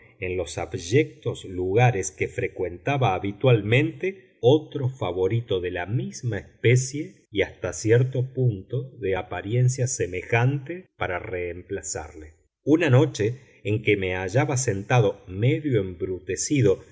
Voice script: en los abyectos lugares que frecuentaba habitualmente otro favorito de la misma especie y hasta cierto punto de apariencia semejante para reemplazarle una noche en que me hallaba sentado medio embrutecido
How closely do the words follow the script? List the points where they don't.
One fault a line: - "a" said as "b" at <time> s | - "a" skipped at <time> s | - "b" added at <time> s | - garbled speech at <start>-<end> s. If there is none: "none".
none